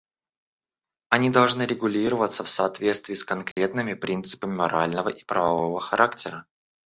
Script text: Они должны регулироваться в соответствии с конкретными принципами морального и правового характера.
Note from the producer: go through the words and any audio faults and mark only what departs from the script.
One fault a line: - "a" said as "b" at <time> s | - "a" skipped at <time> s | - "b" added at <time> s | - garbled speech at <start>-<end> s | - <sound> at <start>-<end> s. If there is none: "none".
- dropout at 3.5-3.6 s